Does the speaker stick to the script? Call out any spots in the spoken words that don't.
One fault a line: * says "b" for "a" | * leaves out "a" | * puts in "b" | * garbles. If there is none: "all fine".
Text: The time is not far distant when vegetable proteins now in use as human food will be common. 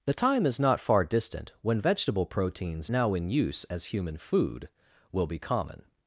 all fine